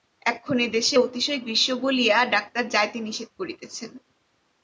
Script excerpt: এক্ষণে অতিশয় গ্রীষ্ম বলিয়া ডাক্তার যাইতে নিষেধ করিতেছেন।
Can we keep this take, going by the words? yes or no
no